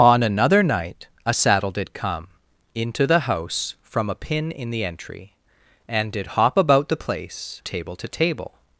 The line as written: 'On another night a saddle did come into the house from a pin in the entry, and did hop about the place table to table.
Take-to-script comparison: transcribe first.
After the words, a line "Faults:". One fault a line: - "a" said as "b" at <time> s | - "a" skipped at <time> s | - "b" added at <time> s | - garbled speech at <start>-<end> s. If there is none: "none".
'On another night a saddle did come into the house from a pin in the entry, and did hop about the place table to table.
Faults:
none